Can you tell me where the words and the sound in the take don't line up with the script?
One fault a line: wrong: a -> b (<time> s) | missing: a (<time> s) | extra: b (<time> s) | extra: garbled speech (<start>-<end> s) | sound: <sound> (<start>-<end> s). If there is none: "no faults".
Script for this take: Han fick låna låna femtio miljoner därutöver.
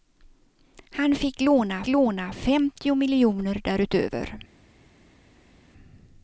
no faults